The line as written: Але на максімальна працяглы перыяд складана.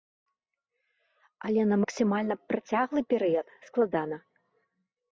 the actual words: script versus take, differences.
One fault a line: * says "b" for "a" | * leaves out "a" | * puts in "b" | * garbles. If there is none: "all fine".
all fine